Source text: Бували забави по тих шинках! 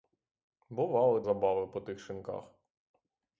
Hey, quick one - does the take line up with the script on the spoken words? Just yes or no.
yes